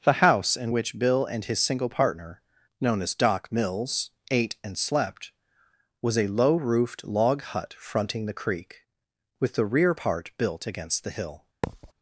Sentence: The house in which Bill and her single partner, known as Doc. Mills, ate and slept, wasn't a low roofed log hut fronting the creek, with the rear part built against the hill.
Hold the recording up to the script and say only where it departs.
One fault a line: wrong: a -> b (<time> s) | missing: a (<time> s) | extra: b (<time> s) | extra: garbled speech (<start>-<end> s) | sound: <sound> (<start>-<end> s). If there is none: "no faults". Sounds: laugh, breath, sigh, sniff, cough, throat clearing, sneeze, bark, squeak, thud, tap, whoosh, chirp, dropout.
wrong: her -> his (1.4 s)
wrong: wasn't -> was (6.0 s)
sound: thud (11.6-11.9 s)